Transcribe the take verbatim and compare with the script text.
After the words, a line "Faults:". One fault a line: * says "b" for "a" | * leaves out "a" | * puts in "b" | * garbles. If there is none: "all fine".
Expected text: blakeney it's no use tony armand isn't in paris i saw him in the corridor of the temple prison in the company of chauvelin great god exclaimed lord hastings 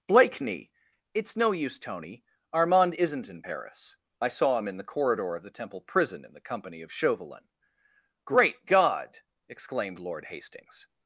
blakeney it's no use tony armand isn't in paris i saw him in the corridor of the temple prison in the company of chauvelin great god exclaimed lord hastings
Faults:
all fine